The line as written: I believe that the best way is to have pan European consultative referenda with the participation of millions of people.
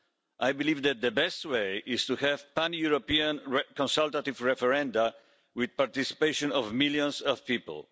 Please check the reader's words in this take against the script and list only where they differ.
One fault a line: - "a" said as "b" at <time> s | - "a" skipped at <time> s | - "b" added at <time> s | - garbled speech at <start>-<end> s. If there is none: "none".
none